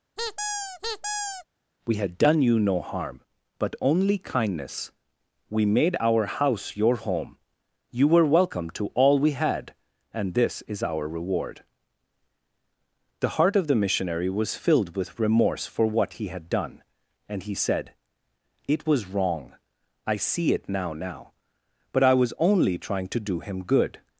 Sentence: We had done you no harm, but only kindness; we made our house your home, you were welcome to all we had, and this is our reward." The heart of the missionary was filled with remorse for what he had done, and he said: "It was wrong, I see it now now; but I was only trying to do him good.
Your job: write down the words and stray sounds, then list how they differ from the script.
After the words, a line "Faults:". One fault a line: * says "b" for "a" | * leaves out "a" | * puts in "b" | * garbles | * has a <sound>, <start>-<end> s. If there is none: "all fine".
We had done you no harm, but only kindness; we made our house your home, you were welcome to all we had, and this is our reward." The heart of the missionary was filled with remorse for what he had done, and he said: "It was wrong, I see it now now; but I was only trying to do him good.
Faults:
* has a squeak, 0.2-1.5 s